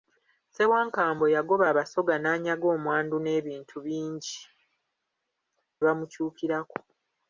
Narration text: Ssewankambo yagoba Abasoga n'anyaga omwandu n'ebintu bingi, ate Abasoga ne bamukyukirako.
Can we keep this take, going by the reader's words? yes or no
no